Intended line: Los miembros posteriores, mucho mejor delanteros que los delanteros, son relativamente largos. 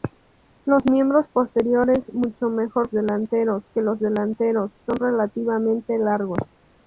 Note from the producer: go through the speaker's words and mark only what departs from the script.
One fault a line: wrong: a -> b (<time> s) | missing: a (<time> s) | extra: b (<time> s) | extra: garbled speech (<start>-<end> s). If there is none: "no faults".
no faults